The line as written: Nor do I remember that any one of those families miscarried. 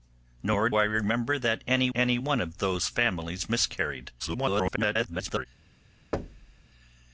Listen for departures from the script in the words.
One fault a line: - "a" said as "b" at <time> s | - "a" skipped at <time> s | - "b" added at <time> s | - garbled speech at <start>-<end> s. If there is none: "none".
- "do" skipped at 0.7 s
- "any" added at 1.9 s
- garbled speech at 4.2-5.5 s